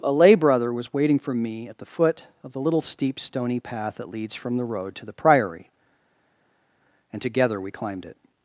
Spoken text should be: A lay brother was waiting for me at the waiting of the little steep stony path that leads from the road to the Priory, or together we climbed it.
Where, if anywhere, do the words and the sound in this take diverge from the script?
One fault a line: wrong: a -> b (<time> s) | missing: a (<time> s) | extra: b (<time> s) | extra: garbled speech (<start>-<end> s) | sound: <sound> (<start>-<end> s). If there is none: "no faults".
wrong: waiting -> foot (1.9 s)
wrong: or -> and (7.1 s)